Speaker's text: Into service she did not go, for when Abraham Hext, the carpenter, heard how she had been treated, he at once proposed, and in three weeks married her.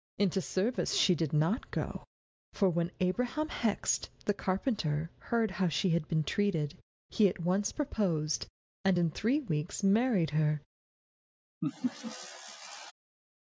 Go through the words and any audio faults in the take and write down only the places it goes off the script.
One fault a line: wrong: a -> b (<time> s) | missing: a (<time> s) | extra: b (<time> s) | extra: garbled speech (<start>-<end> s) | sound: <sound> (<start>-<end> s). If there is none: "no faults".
sound: laugh (11.6-12.9 s)